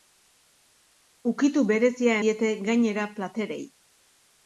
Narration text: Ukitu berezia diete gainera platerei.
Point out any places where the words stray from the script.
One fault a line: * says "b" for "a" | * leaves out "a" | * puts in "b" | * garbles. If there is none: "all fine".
all fine